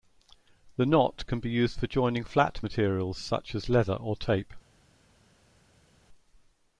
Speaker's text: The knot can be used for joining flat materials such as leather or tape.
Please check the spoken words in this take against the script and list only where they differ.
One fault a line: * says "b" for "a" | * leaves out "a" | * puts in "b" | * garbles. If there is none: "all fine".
all fine